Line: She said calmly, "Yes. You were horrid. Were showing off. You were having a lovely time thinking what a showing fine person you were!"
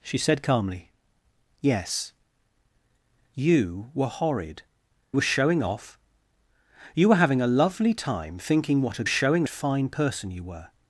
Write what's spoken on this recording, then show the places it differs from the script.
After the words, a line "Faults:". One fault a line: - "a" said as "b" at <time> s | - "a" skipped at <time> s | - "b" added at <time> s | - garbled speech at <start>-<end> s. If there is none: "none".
She said calmly, "Yes. You were horrid. Were showing off. You were having a lovely time thinking what a showing fine person you were!"
Faults:
none